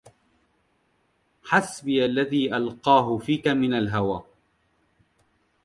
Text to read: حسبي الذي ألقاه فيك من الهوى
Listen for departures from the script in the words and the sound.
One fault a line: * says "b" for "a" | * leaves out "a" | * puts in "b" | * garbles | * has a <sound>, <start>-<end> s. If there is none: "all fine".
all fine